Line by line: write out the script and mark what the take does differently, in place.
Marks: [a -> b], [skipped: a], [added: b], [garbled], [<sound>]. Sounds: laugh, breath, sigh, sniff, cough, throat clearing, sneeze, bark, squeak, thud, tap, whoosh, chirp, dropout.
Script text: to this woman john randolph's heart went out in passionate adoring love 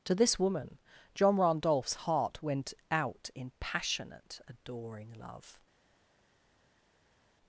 to this woman john randolph's heart went out in passionate adoring love